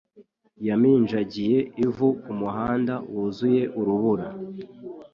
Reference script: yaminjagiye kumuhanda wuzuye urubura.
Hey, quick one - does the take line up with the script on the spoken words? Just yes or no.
no